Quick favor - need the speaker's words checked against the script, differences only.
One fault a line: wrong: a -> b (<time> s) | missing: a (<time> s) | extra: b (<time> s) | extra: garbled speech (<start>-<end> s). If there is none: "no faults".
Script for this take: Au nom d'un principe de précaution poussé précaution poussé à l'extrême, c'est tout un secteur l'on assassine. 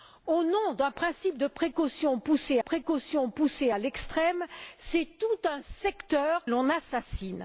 no faults